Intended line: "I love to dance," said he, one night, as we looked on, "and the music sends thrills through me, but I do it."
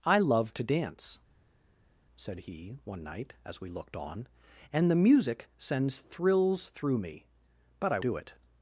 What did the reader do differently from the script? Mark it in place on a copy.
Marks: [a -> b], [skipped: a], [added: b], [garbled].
"I love to dance," said he, one night, as we looked on, "and the music sends thrills through me, but I do it."